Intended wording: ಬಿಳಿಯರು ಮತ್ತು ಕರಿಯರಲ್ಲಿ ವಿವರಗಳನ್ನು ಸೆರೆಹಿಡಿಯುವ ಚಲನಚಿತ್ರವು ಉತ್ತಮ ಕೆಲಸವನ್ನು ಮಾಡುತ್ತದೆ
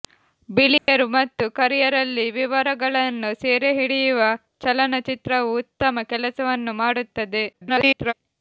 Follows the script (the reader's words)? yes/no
no